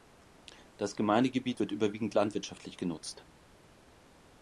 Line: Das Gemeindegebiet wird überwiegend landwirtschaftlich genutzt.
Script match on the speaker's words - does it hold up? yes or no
yes